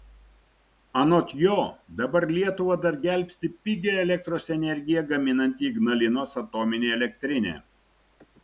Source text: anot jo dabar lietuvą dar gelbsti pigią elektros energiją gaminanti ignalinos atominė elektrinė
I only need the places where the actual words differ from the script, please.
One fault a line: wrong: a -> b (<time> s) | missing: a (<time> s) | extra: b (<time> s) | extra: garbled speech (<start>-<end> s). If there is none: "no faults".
no faults